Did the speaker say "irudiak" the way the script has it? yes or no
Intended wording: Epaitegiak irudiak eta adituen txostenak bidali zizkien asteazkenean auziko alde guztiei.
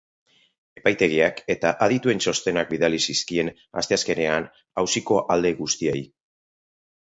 no